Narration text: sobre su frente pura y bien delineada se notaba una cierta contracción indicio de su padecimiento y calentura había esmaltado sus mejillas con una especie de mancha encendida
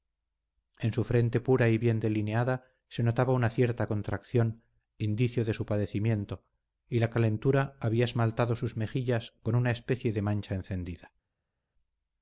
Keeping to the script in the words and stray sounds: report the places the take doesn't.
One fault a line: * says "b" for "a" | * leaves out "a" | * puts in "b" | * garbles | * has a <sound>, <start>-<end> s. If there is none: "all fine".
* says "en" for "sobre"
* puts in "la"